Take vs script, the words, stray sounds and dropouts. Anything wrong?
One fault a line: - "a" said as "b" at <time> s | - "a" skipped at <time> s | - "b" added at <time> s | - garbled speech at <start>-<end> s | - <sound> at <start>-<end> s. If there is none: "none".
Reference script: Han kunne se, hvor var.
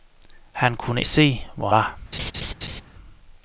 - laugh at 2.1-2.8 s